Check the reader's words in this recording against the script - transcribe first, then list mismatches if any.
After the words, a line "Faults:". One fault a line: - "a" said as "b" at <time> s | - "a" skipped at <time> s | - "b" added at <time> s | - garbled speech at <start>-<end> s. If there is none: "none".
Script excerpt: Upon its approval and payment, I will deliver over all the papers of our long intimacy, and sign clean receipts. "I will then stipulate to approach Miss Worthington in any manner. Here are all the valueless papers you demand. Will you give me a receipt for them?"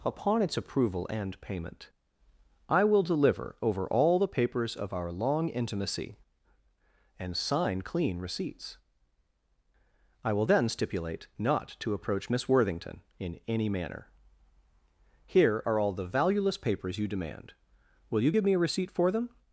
Upon its approval and payment, I will deliver over all the papers of our long intimacy, and sign clean receipts. "I will then stipulate not to approach Miss Worthington in any manner. Here are all the valueless papers you demand. Will you give me a receipt for them?"
Faults:
- "not" added at 11.4 s